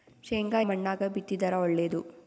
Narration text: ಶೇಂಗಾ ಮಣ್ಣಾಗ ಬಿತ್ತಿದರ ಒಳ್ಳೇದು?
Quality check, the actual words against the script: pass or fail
pass